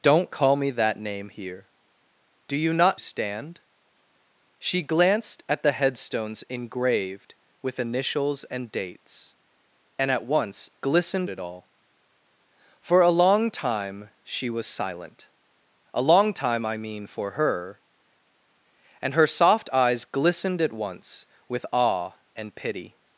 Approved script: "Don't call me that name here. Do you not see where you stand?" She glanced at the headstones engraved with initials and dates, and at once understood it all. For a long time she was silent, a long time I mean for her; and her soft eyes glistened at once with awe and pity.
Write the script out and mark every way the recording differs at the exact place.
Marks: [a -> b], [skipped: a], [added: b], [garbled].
"Don't call me that name here. Do you not [skipped: see where you] stand?" She glanced at the headstones engraved with initials and dates, and at once [understood -> glistened] it all. For a long time she was silent, a long time I mean for her; and her soft eyes glistened at once with awe and pity.